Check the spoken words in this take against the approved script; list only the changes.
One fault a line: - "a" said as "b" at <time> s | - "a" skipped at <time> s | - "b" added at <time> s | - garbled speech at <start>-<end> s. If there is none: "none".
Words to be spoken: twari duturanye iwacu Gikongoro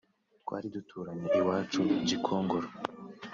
none